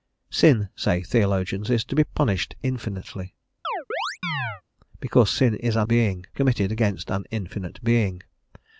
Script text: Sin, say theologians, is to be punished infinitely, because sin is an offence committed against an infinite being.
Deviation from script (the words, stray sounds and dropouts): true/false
true